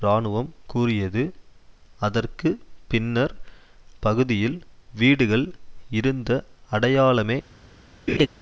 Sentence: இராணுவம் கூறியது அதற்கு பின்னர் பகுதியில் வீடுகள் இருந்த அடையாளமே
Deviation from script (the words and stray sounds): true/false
true